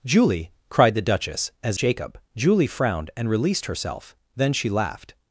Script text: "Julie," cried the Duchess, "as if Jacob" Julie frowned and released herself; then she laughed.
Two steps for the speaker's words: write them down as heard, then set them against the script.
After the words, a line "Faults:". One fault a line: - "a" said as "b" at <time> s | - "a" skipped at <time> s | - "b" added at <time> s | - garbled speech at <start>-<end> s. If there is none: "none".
"Julie," cried the Duchess, "as Jacob" Julie frowned and released herself; then she laughed.
Faults:
- "if" skipped at 1.8 s